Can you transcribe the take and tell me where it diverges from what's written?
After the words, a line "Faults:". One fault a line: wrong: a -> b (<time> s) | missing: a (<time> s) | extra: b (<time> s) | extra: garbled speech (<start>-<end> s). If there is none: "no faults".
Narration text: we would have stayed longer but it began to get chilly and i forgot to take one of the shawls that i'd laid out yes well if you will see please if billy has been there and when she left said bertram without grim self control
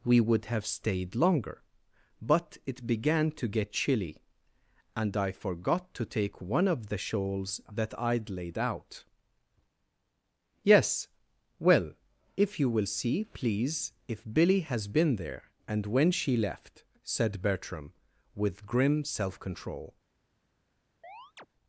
we would have stayed longer but it began to get chilly and i forgot to take one of the shawls that i'd laid out yes well if you will see please if billy has been there and when she left said bertram with grim self control
Faults:
wrong: without -> with (18.3 s)